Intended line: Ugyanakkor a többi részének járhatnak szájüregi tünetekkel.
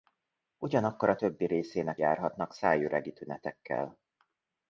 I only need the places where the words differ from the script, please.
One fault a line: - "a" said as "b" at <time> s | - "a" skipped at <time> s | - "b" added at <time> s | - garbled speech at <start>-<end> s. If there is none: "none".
none